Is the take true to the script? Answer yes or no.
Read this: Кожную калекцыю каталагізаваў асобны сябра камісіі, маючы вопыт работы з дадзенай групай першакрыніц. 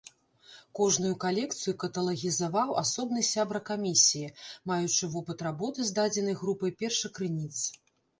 yes